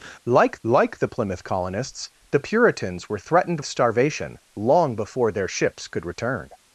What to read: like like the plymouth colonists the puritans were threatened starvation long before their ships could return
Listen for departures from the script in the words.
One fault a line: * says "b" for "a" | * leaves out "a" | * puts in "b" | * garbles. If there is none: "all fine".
all fine